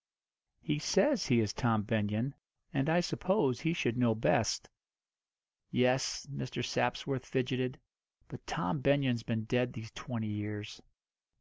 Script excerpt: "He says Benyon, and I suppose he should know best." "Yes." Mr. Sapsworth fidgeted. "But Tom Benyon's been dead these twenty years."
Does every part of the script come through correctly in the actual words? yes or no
no